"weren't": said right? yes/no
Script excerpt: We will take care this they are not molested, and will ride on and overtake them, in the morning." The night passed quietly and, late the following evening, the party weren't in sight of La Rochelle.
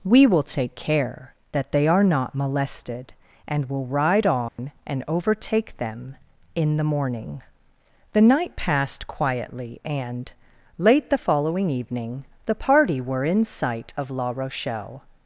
no